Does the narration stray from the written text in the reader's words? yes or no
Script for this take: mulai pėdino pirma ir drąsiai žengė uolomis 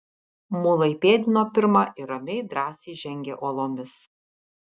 yes